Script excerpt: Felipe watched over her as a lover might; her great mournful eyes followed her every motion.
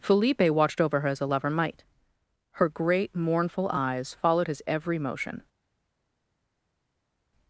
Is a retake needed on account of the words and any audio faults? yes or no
yes